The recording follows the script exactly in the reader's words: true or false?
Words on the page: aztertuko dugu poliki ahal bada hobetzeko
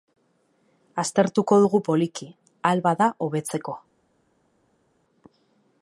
true